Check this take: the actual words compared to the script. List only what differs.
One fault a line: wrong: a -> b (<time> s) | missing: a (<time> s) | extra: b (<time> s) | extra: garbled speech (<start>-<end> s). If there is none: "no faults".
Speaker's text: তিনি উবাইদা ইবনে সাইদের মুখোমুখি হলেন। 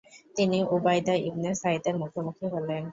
no faults